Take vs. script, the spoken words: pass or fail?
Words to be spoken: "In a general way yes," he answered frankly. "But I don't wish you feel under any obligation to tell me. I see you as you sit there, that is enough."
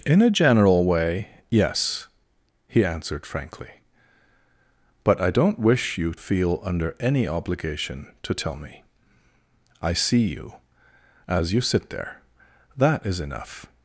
pass